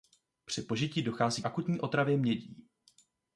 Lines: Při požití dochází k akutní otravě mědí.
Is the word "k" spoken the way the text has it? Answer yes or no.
no